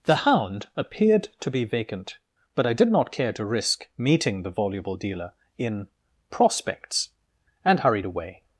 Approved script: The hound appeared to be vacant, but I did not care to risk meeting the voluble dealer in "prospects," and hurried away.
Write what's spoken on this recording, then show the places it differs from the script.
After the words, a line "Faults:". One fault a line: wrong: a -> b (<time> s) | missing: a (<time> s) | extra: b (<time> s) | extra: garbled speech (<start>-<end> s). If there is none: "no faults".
The hound appeared to be vacant, but I did not care to risk meeting the voluble dealer in "prospects," and hurried away.
Faults:
no faults